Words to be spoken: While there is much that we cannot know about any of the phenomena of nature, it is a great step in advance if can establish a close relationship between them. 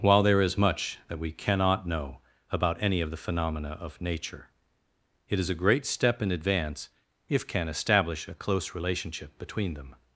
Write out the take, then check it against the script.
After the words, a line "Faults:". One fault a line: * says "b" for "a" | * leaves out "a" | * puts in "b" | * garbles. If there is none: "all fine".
While there is much that we cannot know about any of the phenomena of nature, it is a great step in advance if can establish a close relationship between them.
Faults:
all fine